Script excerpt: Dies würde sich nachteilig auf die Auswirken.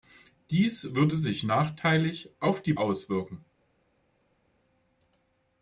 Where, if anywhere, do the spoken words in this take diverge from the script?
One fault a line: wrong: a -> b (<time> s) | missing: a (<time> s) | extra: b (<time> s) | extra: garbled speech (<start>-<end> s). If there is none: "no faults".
no faults